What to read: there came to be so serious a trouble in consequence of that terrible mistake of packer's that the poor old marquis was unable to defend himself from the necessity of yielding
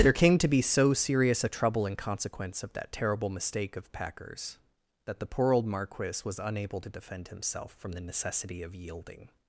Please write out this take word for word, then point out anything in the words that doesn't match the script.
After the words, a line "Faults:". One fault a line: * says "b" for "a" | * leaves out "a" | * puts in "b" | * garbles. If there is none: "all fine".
there came to be so serious a trouble in consequence of that terrible mistake of packer's that the poor old marquis was unable to defend himself from the necessity of yielding
Faults:
all fine